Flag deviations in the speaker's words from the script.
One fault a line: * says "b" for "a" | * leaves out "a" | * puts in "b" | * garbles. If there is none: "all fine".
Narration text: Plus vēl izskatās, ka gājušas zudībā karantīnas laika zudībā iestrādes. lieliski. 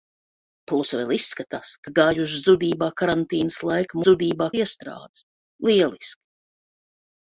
all fine